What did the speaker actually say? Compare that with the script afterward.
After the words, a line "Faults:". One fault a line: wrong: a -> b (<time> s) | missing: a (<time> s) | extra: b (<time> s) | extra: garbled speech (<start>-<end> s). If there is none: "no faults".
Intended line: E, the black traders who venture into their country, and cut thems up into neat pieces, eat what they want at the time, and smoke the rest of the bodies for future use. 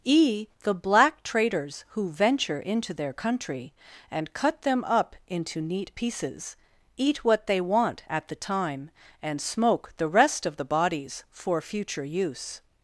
E, the black traders who venture into their country, and cut them up into neat pieces, eat what they want at the time, and smoke the rest of the bodies for future use.
Faults:
wrong: thems -> them (4.6 s)